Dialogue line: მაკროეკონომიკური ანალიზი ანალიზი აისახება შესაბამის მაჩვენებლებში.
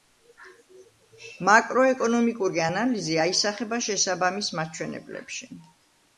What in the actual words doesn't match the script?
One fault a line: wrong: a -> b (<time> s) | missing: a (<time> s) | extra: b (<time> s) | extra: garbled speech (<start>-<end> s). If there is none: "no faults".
missing: ანალიზი (3.2 s)